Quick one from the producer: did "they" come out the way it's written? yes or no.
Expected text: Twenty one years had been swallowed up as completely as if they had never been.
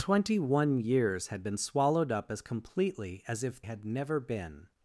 no